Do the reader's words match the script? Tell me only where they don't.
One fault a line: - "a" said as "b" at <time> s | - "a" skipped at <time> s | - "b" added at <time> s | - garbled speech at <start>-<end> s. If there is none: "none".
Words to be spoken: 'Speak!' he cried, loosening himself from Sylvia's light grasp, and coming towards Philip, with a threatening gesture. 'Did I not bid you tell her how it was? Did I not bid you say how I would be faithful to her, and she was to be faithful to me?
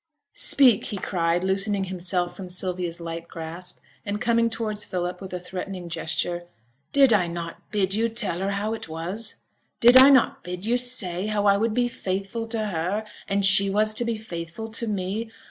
none